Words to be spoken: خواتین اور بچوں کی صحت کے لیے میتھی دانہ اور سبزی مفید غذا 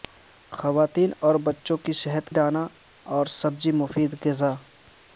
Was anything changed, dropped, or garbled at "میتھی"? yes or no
yes